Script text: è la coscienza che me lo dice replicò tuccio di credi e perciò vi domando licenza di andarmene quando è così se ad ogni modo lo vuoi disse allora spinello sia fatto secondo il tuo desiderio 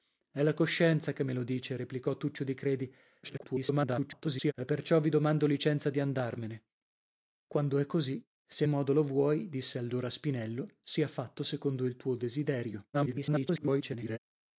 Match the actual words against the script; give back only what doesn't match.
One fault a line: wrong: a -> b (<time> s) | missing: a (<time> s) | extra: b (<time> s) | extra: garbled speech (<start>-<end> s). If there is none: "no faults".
extra: garbled speech (3.2-4.5 s)
missing: ad ogni (8.6 s)
extra: garbled speech (12.9-14.2 s)